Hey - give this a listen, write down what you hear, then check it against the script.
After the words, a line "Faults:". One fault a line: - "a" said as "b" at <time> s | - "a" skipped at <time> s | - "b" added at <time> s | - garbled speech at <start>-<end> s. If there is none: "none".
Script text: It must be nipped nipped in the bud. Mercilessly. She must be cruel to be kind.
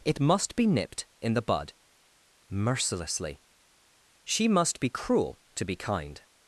It must be nipped in the bud. Mercilessly. She must be cruel to be kind.
Faults:
- "nipped" skipped at 1.1 s